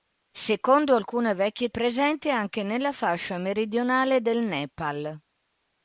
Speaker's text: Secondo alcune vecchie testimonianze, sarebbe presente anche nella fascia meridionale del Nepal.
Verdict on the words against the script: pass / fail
fail